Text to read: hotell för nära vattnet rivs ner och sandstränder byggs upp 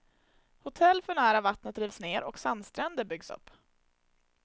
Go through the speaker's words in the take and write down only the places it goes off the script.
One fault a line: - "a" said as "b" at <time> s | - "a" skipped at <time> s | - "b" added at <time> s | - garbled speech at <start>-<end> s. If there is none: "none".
none